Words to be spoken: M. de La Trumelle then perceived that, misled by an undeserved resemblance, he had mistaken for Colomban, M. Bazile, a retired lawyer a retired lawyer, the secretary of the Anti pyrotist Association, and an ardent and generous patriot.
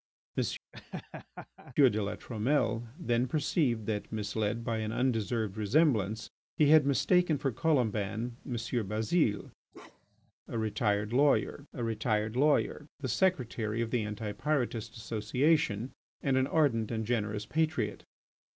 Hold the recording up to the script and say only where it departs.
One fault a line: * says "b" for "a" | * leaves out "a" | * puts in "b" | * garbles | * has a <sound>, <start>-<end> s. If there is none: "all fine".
* has a laugh, 0.7-1.8 s
* has a bark, 9.7-10.3 s